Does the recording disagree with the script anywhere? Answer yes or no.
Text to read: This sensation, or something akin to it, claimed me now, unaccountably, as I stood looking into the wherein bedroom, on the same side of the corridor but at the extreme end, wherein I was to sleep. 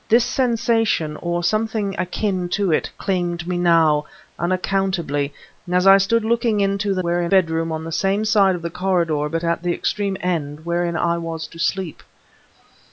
no